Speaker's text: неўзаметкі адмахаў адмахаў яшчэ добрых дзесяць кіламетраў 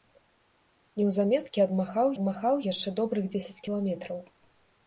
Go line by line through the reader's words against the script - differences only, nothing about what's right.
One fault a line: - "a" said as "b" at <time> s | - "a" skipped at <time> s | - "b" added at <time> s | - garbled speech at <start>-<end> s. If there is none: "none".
none